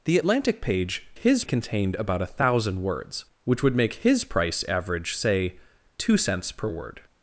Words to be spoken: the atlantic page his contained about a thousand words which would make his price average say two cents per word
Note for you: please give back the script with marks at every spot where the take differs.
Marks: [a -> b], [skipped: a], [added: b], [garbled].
the atlantic page his contained about a thousand words which would make his price average say two cents per word